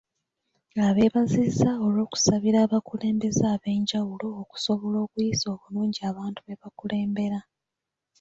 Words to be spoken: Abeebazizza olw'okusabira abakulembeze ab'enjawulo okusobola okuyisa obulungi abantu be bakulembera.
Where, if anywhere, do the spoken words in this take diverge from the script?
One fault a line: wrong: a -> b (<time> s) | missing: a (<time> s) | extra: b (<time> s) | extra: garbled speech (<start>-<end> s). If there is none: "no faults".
no faults